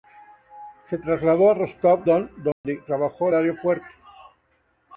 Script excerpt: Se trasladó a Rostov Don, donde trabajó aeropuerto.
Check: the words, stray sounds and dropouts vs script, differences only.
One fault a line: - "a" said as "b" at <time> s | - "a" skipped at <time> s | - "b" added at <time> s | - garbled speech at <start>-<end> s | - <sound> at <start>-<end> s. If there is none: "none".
- dropout at 2.5-2.6 s